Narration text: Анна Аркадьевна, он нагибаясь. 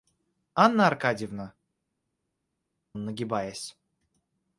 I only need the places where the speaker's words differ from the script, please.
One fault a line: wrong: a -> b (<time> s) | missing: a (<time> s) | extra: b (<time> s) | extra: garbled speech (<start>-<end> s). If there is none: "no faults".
no faults